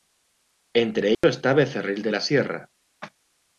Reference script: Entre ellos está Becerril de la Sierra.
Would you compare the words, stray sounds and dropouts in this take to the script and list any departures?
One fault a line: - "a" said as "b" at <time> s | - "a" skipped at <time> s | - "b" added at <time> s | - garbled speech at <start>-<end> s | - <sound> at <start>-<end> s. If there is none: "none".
- dropout at 1.1-1.2 s